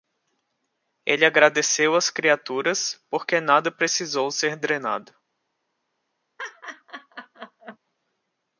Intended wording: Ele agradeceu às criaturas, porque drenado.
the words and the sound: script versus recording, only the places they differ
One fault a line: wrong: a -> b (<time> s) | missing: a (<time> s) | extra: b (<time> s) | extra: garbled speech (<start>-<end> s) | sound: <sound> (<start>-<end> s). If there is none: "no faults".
extra: nada precisou ser (3.4 s)
sound: laugh (6.4-7.8 s)